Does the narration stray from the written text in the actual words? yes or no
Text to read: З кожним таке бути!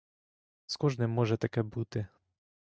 yes